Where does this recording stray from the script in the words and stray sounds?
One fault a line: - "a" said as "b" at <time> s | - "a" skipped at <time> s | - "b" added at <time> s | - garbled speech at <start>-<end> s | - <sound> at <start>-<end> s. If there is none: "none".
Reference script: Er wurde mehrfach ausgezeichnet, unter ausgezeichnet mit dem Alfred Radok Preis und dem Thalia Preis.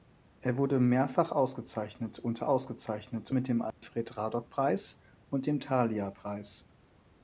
- dropout at 3.7-3.8 s